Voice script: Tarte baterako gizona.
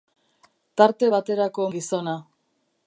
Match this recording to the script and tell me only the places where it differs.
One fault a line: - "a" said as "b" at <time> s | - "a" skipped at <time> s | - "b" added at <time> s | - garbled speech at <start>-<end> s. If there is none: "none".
none